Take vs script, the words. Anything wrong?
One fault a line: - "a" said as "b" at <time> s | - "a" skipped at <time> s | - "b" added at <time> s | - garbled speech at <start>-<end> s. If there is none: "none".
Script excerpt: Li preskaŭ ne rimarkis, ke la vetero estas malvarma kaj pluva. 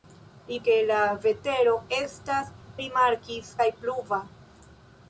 - "preskaŭ ne rimarkis" skipped at 0.6 s
- "malvarma" said as "rimarkis" at 2.8 s